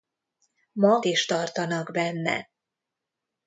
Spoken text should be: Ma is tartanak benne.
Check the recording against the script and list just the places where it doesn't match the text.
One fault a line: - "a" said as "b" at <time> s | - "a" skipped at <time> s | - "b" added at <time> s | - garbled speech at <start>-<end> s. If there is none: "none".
none